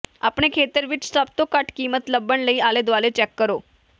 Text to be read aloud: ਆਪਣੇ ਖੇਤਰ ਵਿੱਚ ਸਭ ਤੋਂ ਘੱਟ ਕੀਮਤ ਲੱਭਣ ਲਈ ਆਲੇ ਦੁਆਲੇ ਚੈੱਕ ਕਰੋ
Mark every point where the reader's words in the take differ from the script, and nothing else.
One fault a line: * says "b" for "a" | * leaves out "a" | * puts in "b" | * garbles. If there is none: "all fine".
all fine